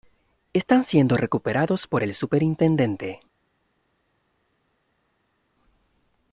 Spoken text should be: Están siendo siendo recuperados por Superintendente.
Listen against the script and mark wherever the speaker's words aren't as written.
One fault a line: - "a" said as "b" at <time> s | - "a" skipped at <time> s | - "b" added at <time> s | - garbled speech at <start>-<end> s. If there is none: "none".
- "siendo" skipped at 1.1 s
- "el" added at 2.0 s